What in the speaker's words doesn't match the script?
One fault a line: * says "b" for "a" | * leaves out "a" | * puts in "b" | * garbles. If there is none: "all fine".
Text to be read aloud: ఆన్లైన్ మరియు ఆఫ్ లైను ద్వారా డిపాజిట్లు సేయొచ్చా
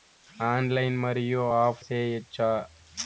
* leaves out "లైను ద్వారా డిపాజిట్లు"